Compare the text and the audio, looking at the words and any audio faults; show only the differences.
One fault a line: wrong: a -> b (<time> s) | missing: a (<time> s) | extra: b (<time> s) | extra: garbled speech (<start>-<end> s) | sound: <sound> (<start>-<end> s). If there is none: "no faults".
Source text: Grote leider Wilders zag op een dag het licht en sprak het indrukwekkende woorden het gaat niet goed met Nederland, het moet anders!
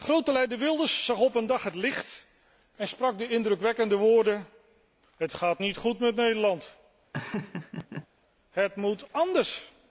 wrong: het -> de (3.2 s)
sound: laugh (7.1-8.1 s)